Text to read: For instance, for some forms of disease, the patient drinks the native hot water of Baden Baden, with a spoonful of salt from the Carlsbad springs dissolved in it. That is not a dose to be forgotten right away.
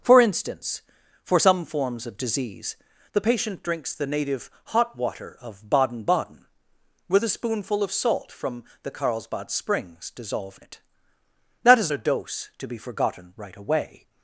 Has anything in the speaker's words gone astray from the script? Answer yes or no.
yes